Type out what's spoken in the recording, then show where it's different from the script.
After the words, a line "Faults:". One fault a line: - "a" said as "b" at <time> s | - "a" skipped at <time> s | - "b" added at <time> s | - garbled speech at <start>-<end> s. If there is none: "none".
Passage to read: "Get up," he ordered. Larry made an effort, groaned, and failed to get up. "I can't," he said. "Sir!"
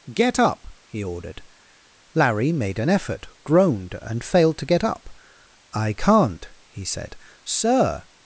"Get up," he ordered. Larry made an effort, groaned, and failed to get up. "I can't," he said. "Sir!"
Faults:
none